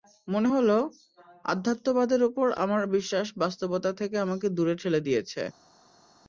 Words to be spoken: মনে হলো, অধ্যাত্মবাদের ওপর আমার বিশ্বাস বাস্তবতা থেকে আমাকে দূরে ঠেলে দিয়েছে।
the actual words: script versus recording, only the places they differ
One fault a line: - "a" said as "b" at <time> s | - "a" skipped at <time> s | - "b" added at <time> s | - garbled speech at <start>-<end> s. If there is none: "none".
none